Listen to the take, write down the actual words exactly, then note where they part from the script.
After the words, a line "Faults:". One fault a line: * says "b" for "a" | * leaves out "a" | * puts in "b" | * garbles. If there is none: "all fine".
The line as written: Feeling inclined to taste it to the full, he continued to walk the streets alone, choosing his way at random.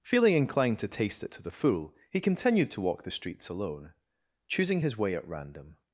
Feeling inclined to taste it to the full, he continued to walk the streets alone, choosing his way at random.
Faults:
all fine